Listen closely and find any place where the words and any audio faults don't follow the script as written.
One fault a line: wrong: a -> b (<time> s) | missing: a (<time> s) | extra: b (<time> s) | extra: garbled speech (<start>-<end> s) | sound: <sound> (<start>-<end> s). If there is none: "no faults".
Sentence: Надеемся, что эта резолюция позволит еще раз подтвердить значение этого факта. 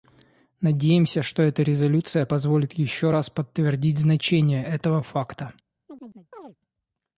sound: chirp (5.9-6.6 s)